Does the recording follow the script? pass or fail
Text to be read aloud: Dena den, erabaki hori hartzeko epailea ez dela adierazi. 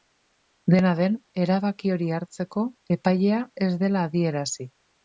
pass